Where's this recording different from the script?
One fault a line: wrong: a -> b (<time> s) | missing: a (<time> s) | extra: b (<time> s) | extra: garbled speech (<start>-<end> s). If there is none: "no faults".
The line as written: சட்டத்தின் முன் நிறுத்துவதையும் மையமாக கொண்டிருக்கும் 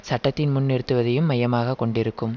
no faults